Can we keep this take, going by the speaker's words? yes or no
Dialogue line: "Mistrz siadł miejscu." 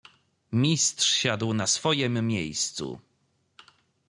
no